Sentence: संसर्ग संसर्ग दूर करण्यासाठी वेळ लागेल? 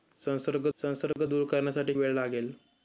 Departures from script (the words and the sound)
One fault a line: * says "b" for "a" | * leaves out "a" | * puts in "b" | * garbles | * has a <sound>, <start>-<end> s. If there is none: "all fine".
* has a dropout, 1.1-1.2 s